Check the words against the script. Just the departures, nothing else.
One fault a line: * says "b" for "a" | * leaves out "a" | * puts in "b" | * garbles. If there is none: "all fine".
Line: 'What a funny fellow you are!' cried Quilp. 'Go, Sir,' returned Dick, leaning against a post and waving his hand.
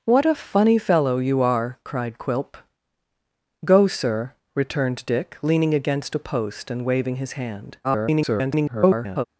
* garbles